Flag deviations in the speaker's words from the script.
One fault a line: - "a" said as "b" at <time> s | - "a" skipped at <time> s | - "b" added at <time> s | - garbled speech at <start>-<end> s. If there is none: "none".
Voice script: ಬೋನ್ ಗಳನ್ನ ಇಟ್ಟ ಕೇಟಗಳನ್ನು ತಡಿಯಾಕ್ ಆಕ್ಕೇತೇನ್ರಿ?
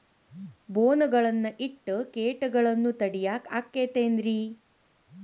none